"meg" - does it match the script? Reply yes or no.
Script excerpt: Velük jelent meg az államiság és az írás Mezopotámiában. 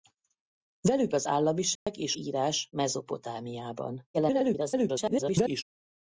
no